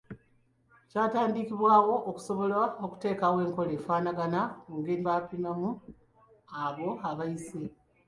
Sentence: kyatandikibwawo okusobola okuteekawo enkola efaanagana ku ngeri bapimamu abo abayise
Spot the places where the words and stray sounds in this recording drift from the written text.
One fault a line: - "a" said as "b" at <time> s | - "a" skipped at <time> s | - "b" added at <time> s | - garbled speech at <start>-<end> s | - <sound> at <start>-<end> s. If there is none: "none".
none